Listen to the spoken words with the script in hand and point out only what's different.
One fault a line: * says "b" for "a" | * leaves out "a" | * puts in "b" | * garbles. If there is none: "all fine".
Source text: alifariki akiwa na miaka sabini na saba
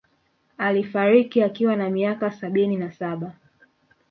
all fine